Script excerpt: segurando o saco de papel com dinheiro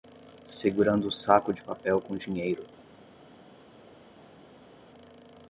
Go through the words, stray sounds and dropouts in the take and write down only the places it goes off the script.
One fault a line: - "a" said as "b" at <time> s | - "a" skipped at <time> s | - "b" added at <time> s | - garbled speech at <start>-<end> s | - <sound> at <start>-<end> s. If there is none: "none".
none